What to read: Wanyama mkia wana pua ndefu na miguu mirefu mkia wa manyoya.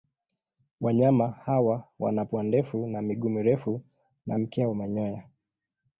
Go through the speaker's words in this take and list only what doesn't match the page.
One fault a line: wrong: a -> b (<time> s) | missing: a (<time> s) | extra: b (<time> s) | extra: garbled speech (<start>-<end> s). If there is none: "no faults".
wrong: mkia -> hawa (1.3 s)
extra: na (4.3 s)